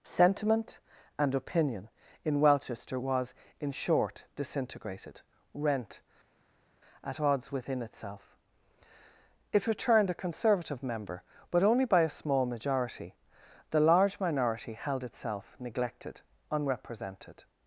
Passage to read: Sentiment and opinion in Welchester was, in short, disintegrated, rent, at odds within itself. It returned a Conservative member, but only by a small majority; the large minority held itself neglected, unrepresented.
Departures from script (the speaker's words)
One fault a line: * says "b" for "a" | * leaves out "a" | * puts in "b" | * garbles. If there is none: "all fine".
all fine